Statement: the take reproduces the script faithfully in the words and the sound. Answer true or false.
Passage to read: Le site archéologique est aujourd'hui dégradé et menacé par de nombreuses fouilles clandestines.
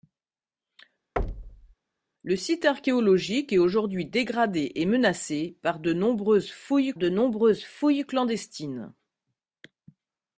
false